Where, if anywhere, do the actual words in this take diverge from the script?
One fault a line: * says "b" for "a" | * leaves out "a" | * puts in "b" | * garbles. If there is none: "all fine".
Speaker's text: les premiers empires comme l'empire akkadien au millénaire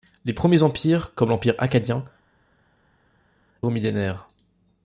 all fine